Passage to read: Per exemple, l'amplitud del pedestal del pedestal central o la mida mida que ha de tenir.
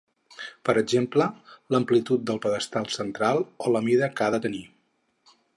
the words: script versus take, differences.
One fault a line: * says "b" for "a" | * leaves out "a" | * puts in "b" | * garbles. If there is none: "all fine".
* leaves out "del pedestal"
* leaves out "mida"